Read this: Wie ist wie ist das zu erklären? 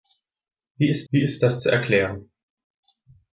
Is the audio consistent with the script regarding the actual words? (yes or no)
yes